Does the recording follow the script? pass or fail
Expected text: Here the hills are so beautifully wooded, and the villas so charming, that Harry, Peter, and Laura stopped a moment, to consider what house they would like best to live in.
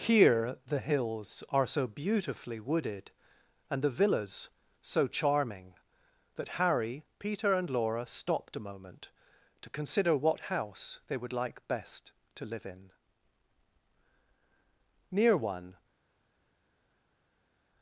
fail